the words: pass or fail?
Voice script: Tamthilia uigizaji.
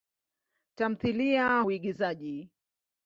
pass